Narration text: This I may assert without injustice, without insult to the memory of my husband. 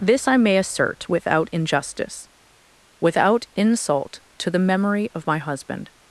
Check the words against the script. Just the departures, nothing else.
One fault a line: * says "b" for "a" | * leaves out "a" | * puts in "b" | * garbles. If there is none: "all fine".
all fine